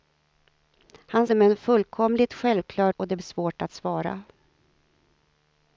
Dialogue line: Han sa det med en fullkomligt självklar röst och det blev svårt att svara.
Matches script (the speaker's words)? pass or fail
fail